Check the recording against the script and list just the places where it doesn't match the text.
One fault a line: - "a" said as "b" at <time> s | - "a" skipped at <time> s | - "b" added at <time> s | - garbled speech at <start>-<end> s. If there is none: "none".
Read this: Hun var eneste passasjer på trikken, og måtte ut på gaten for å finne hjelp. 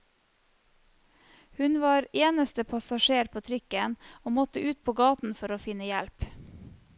none